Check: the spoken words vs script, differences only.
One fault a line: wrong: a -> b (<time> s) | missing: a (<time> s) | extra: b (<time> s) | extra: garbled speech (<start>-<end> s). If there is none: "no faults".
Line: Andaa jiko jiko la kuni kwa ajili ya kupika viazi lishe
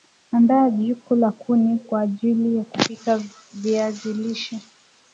missing: jiko (1.1 s)